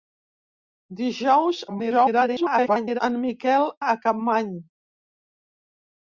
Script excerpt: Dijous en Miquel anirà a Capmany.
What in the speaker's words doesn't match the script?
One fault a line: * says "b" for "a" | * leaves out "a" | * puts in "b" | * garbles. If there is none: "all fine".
* garbles
* leaves out "anirà"